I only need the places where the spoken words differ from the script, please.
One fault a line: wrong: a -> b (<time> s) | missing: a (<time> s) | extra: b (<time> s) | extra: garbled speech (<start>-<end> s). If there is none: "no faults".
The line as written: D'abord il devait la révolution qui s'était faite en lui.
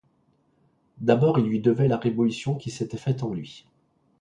extra: lui (1.4 s)